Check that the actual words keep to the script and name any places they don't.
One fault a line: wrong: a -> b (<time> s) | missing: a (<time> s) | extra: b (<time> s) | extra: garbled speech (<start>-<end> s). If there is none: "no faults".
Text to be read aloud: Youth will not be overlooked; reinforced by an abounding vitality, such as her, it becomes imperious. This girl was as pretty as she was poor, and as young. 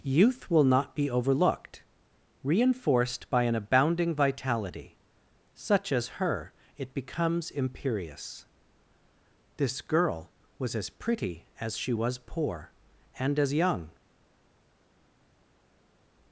no faults